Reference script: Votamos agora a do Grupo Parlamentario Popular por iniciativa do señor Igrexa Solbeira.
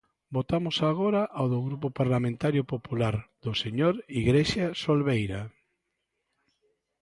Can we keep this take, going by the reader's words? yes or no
no